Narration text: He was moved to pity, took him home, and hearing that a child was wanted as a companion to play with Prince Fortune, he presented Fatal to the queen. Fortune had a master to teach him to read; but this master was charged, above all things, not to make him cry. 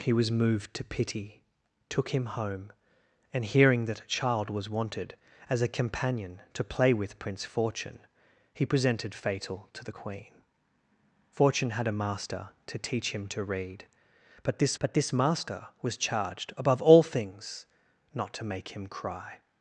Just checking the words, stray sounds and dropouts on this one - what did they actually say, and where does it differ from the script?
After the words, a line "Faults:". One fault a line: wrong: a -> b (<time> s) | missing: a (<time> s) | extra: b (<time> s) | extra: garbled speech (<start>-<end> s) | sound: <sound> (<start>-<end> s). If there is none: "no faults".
He was moved to pity, took him home, and hearing that a child was wanted as a companion to play with Prince Fortune, he presented Fatal to the queen. Fortune had a master to teach him to read; but this but this master was charged, above all things, not to make him cry.
Faults:
extra: but this (14.8 s)